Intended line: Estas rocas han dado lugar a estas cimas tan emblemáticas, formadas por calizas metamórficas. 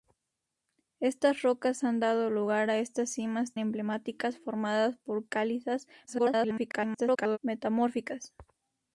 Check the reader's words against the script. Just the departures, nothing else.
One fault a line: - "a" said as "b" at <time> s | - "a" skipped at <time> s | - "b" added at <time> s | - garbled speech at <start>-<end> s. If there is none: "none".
- "tan" skipped at 3.5 s
- garbled speech at 6.1-7.4 s